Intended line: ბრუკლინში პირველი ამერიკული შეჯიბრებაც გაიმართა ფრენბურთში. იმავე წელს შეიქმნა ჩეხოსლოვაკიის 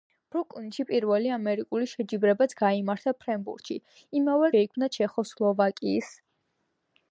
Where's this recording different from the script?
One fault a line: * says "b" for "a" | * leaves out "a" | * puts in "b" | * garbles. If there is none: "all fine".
* leaves out "წელს"